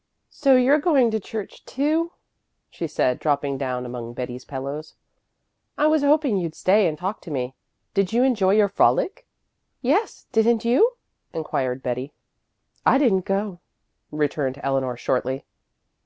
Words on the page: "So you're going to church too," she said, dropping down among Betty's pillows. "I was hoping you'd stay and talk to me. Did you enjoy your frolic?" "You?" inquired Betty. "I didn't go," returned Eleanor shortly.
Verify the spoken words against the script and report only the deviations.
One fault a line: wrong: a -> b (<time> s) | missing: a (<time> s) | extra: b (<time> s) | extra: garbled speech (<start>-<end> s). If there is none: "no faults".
extra: Yes didn't (9.8 s)